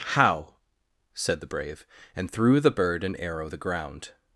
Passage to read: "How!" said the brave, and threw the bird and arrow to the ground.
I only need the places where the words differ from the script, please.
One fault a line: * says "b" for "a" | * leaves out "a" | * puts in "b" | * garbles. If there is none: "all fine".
* leaves out "to"